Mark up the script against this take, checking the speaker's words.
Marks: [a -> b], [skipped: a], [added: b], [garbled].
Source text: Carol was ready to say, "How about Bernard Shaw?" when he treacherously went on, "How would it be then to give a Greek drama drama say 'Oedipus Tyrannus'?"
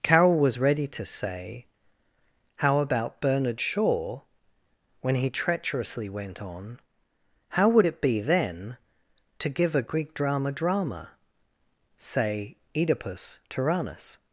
Carol was ready to say, "How about Bernard Shaw?" when he treacherously went on, "How would it be then to give a Greek drama drama say 'Oedipus Tyrannus'?"